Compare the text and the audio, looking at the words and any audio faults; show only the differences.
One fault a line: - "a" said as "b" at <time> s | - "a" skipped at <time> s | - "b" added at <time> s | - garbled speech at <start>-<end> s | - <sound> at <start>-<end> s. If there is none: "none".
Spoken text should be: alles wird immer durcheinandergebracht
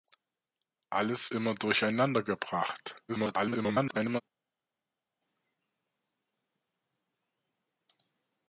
- "wird" skipped at 1.4 s
- garbled speech at 3.1-4.2 s